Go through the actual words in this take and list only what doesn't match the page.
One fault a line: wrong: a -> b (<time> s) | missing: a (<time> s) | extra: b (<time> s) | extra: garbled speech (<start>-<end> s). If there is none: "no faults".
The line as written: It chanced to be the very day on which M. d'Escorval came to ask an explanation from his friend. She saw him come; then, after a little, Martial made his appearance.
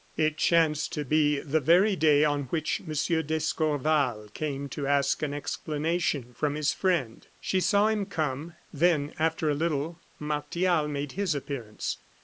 no faults